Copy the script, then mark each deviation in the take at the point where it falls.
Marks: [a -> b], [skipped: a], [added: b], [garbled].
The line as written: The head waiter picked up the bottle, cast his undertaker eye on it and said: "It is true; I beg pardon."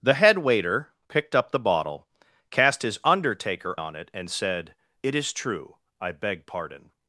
The head waiter picked up the bottle, cast his undertaker [skipped: eye] on it and said: "It is true; I beg pardon."